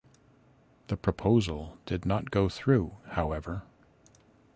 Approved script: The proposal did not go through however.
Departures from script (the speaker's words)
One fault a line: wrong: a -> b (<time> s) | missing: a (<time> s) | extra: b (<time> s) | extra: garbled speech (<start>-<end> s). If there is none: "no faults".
no faults